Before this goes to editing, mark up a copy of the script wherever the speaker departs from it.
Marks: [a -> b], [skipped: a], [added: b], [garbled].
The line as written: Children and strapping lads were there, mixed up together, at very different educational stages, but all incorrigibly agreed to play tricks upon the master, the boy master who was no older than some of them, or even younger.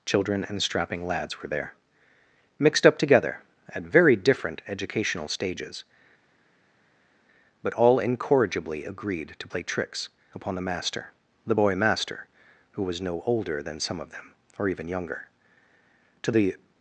Children and strapping lads were there, mixed up together, at very different educational stages, but all incorrigibly agreed to play tricks upon the master, the boy master who was no older than some of them, or even younger. [added: To the]